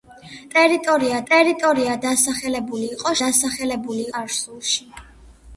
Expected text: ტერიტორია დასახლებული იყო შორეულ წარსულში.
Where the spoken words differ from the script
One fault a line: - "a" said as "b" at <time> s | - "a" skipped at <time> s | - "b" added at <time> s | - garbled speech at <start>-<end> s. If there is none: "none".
- "ტერიტორია" added at 1.3 s
- "შორეულ" said as "დასახლებული" at 3.2 s